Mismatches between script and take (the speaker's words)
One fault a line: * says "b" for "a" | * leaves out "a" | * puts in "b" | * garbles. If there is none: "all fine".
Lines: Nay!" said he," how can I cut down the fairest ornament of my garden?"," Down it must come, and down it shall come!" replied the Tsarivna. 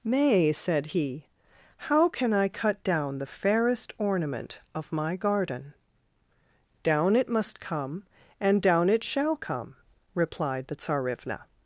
all fine